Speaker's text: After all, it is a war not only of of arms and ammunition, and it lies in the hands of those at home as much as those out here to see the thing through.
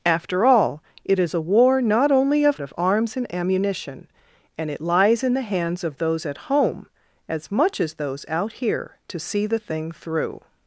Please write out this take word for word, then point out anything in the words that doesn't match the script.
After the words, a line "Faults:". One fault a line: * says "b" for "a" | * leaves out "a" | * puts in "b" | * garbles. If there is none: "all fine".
After all, it is a war not only of of arms and ammunition, and it lies in the hands of those at home as much as those out here to see the thing through.
Faults:
all fine